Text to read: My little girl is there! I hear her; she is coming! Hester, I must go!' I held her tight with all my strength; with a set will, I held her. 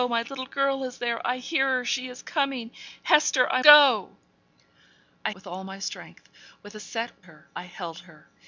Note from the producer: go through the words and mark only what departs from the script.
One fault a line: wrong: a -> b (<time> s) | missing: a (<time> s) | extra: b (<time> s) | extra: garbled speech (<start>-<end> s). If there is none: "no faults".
missing: must (3.6 s)
missing: held her tight (5.3 s)
wrong: will -> her (7.2 s)